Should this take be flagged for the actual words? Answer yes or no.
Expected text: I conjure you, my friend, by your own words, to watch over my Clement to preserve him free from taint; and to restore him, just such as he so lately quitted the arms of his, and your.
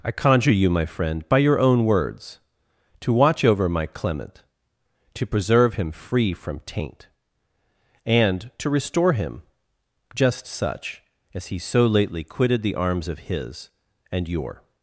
no